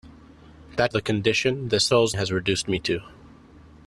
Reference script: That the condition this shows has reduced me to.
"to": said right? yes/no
yes